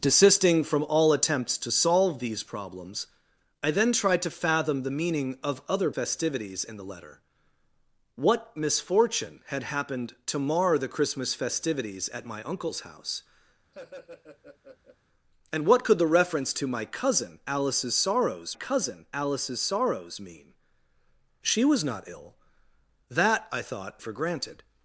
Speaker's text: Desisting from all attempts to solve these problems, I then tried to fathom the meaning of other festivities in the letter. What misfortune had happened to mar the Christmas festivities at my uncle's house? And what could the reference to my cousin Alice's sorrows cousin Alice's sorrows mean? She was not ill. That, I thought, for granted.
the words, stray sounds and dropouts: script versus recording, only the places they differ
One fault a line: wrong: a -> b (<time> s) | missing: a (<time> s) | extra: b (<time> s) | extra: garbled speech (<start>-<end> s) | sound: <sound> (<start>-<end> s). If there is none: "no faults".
sound: laugh (13.7-15.0 s)